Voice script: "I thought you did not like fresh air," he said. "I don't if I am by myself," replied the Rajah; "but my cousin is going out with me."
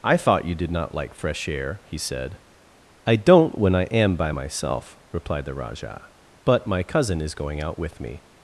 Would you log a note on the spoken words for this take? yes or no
yes